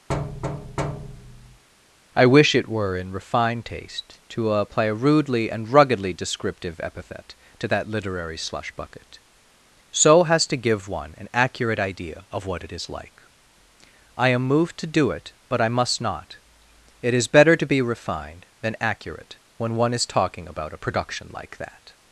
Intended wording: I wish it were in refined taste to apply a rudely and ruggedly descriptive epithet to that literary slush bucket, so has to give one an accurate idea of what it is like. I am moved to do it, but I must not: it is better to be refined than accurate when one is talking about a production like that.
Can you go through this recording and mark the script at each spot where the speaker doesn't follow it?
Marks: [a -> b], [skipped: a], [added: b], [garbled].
I wish it were in refined taste to apply a rudely and ruggedly descriptive epithet to that literary slush bucket, so has to give one an accurate idea of what it is like. I am moved to do it, but I must not: it is better to be refined than accurate when one is talking about a production like that.